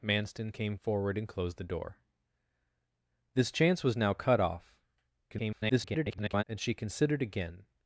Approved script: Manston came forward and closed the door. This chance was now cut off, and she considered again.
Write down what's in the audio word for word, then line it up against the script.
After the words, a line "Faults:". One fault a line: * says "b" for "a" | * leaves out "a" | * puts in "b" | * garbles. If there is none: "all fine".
Manston came forward and closed the door. This chance was now cut off, [garbled] and she considered again.
Faults:
* garbles